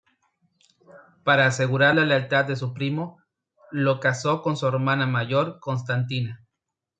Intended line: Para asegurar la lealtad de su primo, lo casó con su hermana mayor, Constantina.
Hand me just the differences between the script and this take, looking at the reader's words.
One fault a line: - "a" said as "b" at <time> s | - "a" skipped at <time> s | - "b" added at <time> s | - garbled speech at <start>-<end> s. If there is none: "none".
none